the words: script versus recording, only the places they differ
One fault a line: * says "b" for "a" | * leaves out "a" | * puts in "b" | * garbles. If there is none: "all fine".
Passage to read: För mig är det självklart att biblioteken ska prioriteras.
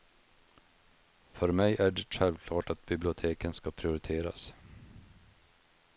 all fine